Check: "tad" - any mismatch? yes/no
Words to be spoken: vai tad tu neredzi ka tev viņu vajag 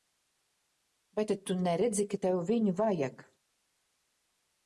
no